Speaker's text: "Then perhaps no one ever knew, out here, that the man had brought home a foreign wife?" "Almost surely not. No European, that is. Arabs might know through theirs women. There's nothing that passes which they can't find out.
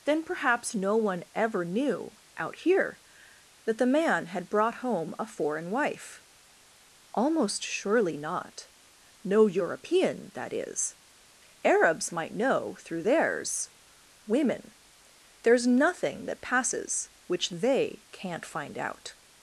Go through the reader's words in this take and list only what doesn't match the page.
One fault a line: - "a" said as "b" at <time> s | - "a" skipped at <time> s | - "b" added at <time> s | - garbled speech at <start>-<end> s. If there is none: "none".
none